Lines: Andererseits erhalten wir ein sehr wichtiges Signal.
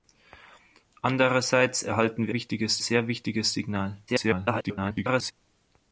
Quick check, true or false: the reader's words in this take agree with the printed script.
false